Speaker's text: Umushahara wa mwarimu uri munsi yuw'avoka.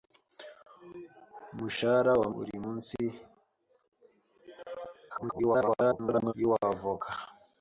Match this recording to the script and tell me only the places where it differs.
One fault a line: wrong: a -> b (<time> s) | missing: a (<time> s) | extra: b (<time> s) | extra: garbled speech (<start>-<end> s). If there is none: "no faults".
missing: mwarimu (2.3 s)
extra: garbled speech (5.1-6.3 s)